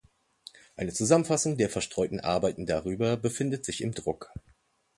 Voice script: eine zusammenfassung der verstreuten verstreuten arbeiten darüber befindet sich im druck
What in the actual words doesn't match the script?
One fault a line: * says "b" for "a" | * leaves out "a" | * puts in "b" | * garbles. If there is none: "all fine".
* leaves out "verstreuten"